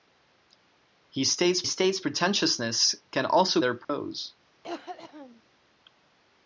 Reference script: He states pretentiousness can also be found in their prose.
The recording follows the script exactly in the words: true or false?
false